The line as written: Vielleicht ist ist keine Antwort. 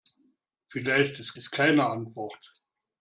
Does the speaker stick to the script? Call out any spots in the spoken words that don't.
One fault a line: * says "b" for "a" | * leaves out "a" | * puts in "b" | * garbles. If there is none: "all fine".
all fine